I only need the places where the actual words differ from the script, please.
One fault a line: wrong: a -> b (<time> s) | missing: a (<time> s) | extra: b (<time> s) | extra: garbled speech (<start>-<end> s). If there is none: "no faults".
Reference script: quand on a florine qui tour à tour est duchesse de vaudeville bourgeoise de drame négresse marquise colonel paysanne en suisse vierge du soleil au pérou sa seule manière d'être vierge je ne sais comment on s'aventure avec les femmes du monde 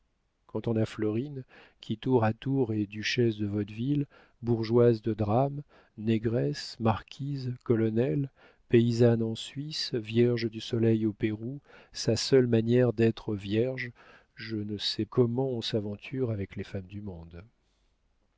no faults